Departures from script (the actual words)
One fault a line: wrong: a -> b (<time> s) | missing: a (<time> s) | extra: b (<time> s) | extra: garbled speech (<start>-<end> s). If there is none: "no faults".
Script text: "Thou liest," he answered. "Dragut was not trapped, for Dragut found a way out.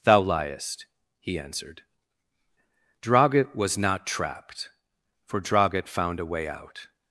no faults